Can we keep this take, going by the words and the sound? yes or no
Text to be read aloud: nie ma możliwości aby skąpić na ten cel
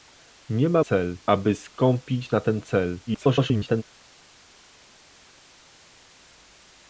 no